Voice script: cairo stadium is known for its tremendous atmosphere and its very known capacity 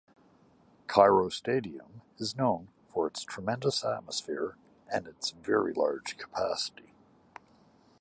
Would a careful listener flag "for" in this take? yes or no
no